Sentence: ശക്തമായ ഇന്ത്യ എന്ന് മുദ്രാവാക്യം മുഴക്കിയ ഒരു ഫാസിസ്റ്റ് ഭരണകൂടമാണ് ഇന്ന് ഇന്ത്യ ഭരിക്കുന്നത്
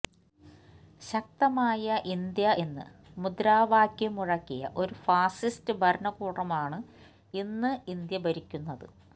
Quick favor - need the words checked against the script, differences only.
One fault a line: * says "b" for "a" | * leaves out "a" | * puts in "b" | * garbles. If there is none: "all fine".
all fine